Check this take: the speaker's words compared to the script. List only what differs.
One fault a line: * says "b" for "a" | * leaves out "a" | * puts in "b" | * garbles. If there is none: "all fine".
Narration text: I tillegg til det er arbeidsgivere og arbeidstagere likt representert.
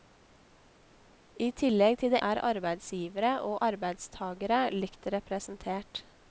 all fine